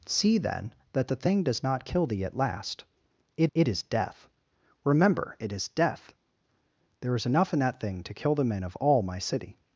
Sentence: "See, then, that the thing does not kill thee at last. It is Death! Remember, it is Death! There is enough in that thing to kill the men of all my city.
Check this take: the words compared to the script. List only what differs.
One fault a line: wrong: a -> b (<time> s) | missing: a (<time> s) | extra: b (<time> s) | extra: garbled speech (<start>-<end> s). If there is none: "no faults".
extra: it (3.5 s)